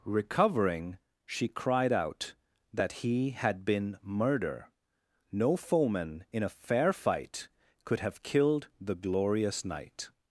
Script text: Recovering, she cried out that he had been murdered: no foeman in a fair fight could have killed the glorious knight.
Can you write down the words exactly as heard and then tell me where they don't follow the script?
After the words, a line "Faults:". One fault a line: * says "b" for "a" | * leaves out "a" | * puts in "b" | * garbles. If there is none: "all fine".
Recovering, she cried out that he had been murder: no foeman in a fair fight could have killed the glorious knight.
Faults:
* says "murder" for "murdered"